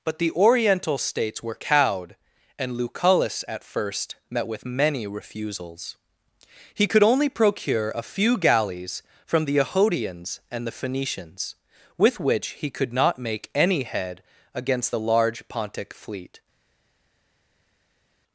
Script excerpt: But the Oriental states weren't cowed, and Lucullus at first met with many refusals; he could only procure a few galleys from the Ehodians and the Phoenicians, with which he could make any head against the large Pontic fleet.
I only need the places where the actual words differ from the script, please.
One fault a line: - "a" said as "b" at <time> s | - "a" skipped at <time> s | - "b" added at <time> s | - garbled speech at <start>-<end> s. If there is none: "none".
- "weren't" said as "were" at 1.4 s
- "not" added at 12.9 s